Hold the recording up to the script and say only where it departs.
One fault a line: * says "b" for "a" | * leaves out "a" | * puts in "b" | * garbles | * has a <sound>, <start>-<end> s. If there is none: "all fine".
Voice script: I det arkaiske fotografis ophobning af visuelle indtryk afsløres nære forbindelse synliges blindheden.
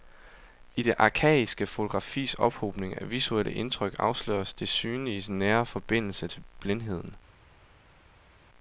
* puts in "det synliges"
* says "til" for "synliges"